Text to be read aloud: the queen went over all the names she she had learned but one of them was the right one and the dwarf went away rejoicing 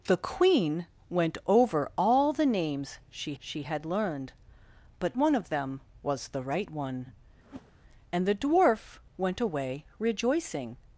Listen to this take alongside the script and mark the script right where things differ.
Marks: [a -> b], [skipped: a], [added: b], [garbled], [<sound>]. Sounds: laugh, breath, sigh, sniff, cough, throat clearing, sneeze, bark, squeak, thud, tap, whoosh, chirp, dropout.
the queen went over all the names she she had learned but one of them was the right one [whoosh] and the dwarf went away rejoicing